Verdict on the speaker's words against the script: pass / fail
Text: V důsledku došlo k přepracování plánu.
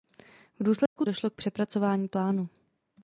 pass